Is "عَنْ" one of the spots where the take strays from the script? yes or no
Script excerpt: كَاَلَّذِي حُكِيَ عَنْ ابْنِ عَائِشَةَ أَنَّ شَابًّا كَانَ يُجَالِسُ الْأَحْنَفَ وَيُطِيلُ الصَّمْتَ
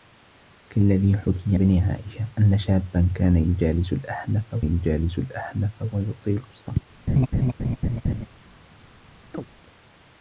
yes